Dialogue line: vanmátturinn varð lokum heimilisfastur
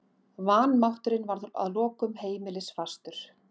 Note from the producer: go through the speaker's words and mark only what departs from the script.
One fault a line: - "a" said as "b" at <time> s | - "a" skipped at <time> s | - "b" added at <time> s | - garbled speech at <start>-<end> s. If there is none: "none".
- "að" added at 1.6 s